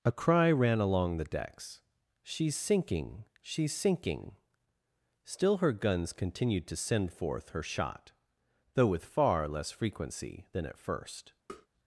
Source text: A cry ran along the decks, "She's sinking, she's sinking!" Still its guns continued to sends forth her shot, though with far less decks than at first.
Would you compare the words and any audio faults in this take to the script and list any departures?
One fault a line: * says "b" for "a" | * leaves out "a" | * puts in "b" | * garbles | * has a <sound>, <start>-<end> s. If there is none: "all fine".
* says "her" for "its"
* says "send" for "sends"
* says "frequency" for "decks"
* has a tap, 11.5-11.7 s